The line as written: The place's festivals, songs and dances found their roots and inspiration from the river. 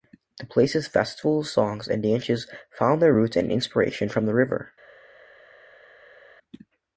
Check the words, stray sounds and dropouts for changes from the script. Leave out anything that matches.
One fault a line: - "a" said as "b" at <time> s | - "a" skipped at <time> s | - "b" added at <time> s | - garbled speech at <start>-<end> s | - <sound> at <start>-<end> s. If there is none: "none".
none